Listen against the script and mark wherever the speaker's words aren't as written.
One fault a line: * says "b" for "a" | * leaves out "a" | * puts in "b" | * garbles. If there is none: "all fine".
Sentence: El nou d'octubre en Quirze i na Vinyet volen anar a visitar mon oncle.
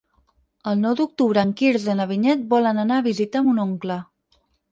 all fine